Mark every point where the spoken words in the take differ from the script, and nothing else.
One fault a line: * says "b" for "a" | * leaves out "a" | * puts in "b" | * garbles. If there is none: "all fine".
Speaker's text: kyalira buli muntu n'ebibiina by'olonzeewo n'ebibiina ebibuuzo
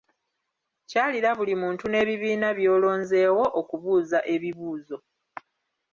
* says "okubuuza" for "n'ebibiina"